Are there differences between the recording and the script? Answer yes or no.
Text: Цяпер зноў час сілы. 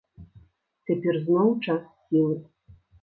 no